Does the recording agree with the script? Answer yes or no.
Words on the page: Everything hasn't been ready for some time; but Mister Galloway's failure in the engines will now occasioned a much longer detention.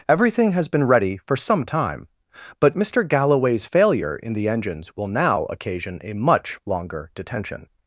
no